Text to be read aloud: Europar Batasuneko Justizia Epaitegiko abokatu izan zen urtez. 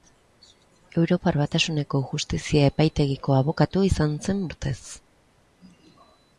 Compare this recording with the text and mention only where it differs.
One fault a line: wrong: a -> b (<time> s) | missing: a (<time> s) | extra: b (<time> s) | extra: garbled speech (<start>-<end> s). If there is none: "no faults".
no faults